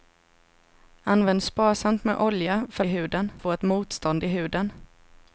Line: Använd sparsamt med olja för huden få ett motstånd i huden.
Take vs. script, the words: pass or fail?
pass